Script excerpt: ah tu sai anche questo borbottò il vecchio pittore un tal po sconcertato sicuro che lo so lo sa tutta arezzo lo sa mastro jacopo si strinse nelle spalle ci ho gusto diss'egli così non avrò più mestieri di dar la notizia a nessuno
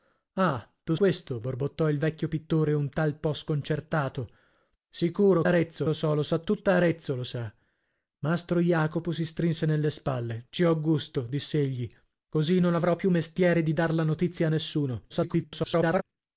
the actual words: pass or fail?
fail